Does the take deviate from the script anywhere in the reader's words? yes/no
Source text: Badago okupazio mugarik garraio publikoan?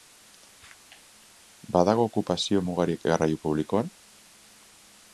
no